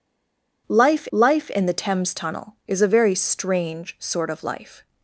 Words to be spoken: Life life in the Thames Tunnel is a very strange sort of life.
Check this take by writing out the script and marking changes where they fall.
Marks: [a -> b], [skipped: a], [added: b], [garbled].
Life life in the Thames Tunnel is a very strange sort of life.